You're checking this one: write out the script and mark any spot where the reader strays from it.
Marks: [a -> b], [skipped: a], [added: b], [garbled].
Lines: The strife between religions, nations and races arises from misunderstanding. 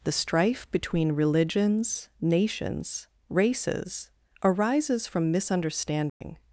The strife between religions, nations [skipped: and] races arises from misunderstanding.